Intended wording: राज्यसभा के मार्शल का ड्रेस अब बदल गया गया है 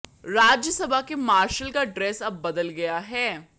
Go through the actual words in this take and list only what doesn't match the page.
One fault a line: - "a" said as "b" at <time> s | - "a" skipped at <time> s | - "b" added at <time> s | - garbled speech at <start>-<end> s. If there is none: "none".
- "गया" skipped at 3.0 s